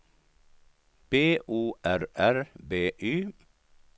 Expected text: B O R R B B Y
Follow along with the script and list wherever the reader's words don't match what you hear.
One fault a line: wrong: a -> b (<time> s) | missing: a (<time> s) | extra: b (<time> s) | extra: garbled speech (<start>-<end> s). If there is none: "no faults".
missing: B (2.9 s)